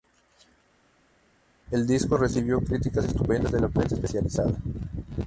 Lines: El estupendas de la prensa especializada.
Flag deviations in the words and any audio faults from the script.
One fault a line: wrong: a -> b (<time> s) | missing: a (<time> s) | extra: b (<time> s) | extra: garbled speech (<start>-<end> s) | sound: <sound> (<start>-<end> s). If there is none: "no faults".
extra: disco recibió críticas (1.9 s)